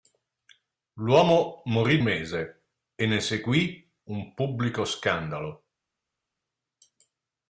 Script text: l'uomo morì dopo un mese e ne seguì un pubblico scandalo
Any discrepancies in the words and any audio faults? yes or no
yes